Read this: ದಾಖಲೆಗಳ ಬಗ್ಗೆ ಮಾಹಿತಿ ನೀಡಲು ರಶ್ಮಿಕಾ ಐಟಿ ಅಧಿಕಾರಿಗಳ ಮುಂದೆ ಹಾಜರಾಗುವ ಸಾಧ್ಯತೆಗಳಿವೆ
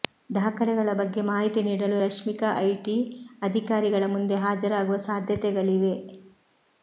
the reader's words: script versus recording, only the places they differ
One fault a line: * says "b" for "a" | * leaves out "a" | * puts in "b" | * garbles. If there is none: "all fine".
all fine